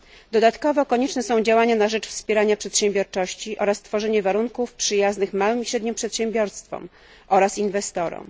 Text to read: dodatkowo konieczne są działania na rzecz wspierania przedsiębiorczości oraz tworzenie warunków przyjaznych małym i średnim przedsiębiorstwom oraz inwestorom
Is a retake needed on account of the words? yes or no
no